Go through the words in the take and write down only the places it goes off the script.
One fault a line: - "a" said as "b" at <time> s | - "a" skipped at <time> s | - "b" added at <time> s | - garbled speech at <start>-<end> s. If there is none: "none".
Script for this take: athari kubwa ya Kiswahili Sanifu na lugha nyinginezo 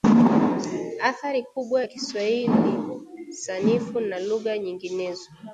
none